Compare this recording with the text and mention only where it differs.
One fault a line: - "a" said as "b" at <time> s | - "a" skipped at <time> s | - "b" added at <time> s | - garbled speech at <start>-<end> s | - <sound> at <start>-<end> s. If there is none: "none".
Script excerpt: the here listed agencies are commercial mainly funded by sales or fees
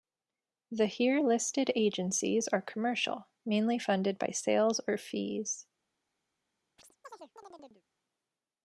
- chirp at 6.8-7.8 s